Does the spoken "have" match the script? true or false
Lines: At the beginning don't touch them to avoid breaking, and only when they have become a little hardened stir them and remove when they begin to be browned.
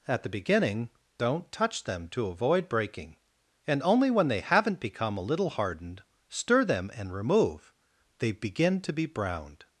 false